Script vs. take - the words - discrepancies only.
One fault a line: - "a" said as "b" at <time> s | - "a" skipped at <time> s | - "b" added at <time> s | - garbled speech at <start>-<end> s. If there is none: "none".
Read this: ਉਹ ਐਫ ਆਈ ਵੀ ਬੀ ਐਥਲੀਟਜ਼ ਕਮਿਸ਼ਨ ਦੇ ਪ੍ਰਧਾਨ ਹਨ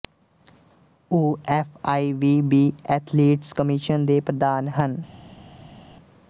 none